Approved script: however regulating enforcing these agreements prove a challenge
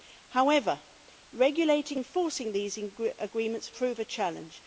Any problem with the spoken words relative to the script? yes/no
no